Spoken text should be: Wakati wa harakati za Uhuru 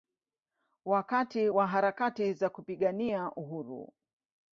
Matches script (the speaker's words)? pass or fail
fail